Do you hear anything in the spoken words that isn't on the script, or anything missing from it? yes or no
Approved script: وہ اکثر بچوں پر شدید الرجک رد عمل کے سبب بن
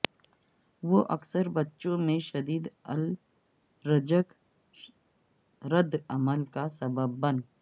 yes